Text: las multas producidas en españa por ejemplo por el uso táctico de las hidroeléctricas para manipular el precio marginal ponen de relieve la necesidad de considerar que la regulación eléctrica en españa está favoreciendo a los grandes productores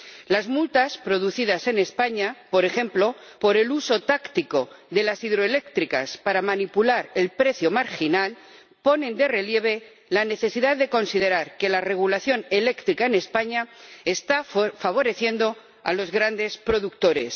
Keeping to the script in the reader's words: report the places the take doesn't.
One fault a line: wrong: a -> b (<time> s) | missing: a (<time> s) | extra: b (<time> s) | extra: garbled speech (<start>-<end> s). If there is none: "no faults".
no faults